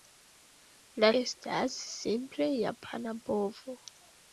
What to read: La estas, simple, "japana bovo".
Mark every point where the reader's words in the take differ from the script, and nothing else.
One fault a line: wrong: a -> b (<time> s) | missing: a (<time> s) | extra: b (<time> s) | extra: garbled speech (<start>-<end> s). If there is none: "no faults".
no faults